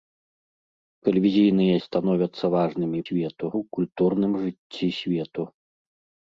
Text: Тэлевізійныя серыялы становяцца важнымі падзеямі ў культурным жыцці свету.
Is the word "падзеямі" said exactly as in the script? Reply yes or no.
no